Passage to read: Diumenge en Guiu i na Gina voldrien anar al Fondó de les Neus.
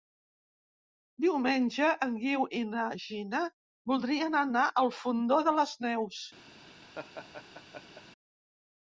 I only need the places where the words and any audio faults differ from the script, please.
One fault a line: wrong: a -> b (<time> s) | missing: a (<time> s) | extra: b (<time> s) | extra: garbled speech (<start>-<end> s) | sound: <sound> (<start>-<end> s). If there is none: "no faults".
sound: laugh (6.9-8.0 s)